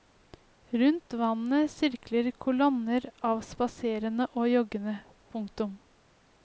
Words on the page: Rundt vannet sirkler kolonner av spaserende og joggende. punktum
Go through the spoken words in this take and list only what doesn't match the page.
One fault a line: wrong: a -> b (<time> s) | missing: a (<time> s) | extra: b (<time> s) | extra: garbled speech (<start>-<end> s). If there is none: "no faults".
no faults